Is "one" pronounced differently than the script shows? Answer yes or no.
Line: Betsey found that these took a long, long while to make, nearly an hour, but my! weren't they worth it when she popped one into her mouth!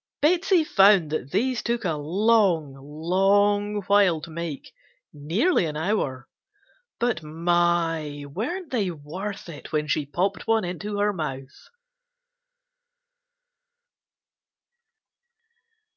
no